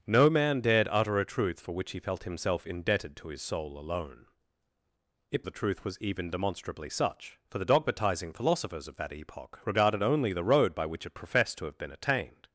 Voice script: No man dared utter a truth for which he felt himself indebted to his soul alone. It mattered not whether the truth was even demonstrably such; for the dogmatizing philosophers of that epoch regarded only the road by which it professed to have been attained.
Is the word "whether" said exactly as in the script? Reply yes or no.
no